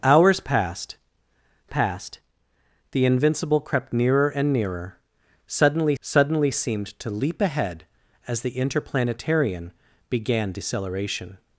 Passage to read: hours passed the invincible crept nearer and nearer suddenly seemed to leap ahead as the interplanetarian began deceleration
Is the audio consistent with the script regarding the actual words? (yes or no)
no